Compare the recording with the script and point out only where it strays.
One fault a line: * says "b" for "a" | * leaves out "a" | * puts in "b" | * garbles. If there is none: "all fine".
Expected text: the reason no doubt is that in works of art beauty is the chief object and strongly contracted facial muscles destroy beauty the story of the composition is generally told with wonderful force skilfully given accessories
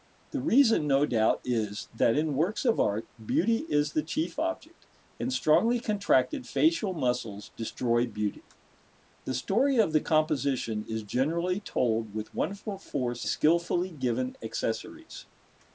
all fine